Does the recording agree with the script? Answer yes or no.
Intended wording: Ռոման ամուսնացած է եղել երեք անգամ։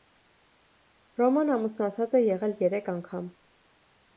yes